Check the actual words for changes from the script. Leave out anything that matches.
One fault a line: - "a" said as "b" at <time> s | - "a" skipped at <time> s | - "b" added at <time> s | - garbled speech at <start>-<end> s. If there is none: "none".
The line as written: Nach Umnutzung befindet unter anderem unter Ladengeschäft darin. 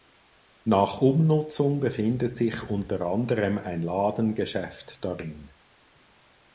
- "sich" added at 2.4 s
- "unter" said as "ein" at 3.6 s